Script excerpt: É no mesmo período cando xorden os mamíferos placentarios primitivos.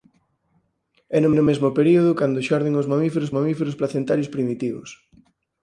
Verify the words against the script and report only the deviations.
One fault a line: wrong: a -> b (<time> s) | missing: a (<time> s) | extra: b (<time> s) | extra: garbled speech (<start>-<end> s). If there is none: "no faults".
extra: no (1.3 s)
extra: mamíferos (3.4 s)